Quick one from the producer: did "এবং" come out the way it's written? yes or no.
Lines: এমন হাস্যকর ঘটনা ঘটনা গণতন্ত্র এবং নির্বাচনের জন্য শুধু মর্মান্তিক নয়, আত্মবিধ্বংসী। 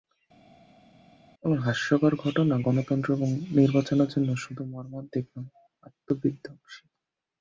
yes